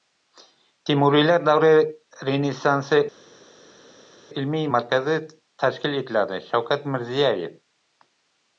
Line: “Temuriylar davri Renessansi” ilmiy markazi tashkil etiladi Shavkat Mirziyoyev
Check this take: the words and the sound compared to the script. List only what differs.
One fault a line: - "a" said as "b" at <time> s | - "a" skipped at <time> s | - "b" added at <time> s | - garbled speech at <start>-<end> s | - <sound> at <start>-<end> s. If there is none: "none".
none